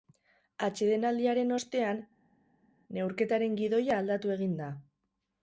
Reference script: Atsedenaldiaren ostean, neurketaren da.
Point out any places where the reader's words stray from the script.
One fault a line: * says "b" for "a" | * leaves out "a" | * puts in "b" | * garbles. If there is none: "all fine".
* puts in "gidoia aldatu egin"